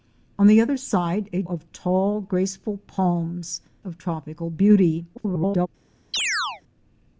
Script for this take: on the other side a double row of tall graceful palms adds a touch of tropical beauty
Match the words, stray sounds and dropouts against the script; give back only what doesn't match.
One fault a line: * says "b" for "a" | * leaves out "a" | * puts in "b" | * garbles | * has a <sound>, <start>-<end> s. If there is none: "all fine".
* leaves out "double row"
* leaves out "adds a touch"
* garbles
* has a chirp, 6.1-6.6 s